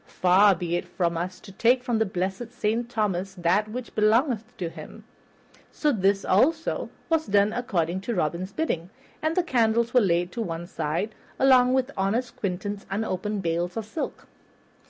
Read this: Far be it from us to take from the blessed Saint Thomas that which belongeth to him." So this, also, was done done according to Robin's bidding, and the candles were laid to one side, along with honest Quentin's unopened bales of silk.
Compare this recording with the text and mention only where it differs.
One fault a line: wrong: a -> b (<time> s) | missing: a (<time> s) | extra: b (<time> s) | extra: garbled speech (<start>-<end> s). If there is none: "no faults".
missing: done (7.5 s)